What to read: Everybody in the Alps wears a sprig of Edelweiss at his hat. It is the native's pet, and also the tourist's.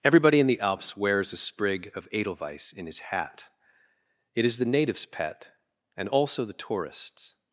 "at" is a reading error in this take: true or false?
true